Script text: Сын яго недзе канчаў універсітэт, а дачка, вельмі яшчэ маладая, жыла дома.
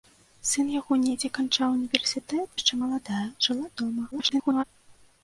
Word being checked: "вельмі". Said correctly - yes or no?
no